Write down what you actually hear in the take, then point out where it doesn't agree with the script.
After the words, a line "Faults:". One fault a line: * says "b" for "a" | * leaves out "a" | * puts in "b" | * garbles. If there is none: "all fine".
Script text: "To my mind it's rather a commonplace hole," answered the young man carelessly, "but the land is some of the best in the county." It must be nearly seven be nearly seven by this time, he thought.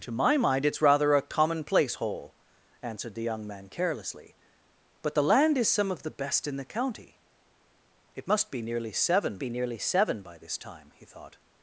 "To my mind it's rather a commonplace hole," answered the young man carelessly, "but the land is some of the best in the county." It must be nearly seven be nearly seven by this time, he thought.
Faults:
all fine